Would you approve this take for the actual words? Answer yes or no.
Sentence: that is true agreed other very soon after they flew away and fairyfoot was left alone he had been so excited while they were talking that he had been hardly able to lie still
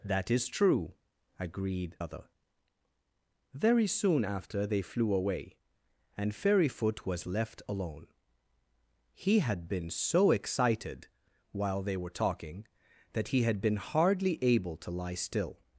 yes